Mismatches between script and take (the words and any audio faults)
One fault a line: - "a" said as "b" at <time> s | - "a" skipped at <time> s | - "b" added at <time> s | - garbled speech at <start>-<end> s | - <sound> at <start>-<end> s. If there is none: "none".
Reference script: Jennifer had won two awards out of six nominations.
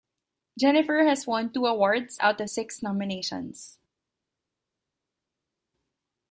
- "had" said as "has" at 1.1 s